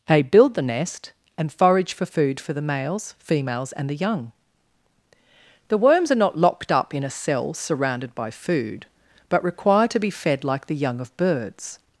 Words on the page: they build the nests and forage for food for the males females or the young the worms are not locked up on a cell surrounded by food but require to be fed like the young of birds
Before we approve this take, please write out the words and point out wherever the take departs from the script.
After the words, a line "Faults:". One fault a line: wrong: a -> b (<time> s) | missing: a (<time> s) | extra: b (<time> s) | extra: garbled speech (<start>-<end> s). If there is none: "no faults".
they build the nest and forage for food for the males females and the young the worms are not locked up in a cell surrounded by food but require to be fed like the young of birds
Faults:
wrong: nests -> nest (0.6 s)
wrong: or -> and (3.7 s)
wrong: on -> in (6.9 s)